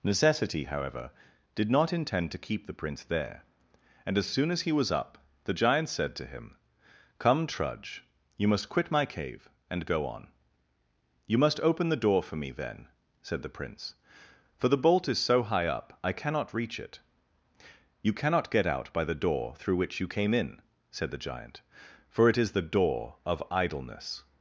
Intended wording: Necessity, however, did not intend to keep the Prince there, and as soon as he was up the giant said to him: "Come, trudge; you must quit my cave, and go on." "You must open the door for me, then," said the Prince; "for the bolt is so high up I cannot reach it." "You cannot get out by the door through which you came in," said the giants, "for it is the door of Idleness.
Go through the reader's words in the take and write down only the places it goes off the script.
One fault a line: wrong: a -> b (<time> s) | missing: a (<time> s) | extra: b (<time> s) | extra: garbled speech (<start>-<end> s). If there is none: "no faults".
wrong: giants -> giant (21.2 s)